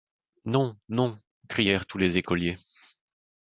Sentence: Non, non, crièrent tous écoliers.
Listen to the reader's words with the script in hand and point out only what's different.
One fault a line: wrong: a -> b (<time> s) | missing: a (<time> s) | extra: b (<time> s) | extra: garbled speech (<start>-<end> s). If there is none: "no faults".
extra: les (2.0 s)